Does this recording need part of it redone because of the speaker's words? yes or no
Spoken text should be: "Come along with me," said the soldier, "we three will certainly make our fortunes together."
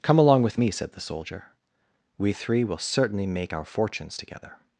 no